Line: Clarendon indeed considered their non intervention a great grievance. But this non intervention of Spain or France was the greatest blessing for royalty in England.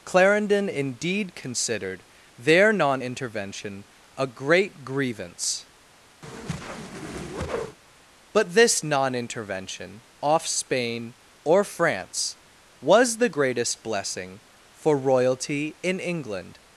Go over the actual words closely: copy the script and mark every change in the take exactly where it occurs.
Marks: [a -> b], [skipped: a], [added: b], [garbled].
Clarendon indeed considered their non intervention a great grievance. But this non intervention [of -> off] Spain or France was the greatest blessing for royalty in England.